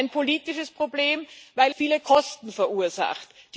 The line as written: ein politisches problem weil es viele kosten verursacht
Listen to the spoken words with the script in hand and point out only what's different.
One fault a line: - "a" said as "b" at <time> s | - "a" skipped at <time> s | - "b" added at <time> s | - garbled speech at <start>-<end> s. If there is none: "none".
- "es" skipped at 1.8 s